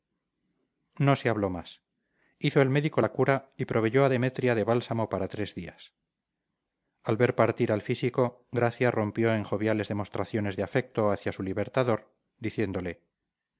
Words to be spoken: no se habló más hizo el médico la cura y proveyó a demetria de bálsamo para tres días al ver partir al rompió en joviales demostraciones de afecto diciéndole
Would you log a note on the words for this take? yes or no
yes